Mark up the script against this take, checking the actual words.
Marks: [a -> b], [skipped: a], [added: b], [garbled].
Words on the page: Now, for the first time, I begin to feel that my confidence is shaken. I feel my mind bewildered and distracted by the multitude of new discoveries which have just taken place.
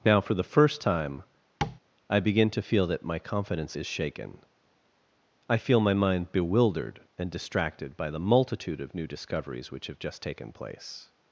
Now, for the first time, I begin to feel that my confidence is shaken. I feel my mind bewildered and distracted by the multitude of new discoveries which have just taken place.